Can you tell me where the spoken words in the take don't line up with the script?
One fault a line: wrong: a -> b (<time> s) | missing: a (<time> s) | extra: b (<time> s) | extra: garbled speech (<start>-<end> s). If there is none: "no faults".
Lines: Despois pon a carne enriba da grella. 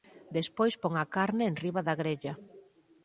no faults